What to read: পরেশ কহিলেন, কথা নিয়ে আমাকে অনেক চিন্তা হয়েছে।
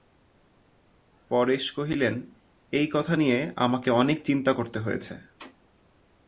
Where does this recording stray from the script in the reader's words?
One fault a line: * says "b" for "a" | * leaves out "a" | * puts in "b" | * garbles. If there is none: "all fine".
* puts in "এই"
* puts in "করতে"